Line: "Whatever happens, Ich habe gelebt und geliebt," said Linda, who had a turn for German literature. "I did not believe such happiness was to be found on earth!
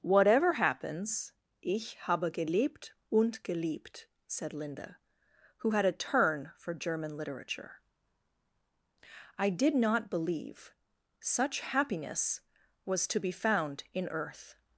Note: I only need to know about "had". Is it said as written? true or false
true